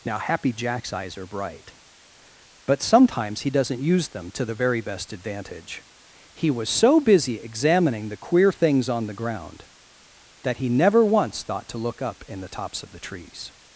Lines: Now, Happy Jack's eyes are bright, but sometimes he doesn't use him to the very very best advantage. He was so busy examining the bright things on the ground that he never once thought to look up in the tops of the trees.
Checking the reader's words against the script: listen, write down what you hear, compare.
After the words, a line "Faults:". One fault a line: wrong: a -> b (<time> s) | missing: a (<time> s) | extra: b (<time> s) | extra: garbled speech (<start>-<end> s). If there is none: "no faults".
Now, Happy Jack's eyes are bright, but sometimes he doesn't use them to the very best advantage. He was so busy examining the queer things on the ground that he never once thought to look up in the tops of the trees.
Faults:
wrong: him -> them (4.1 s)
missing: very (4.8 s)
wrong: bright -> queer (8.2 s)